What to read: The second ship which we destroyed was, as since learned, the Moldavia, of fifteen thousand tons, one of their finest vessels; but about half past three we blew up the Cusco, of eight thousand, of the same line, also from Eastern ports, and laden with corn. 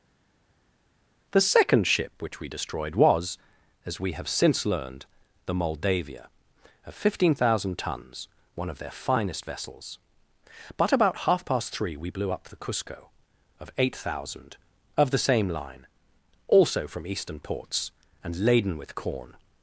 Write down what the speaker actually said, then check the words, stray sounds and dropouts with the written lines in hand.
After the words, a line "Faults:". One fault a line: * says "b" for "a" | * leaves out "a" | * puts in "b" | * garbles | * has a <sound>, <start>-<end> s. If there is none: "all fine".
The second ship which we destroyed was, as we have since learned, the Moldavia, of fifteen thousand tons, one of their finest vessels; but about half past three we blew up the Cusco, of eight thousand, of the same line, also from Eastern ports, and laden with corn.
Faults:
* puts in "we have"